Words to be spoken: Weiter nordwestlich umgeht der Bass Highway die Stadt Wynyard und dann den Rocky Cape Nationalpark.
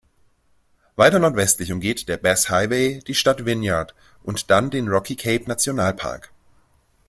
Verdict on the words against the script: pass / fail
pass